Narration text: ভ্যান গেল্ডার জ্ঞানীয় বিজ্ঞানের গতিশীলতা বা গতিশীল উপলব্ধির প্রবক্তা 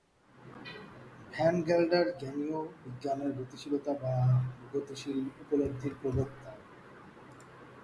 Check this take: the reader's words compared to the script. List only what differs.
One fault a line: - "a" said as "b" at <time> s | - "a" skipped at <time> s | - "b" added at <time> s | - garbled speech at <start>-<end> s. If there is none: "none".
none